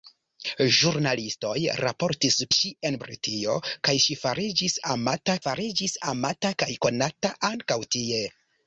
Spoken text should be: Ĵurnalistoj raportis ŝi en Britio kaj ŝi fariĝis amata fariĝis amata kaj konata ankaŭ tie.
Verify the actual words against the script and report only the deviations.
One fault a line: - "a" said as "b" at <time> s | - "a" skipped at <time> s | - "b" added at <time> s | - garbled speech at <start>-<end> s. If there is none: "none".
none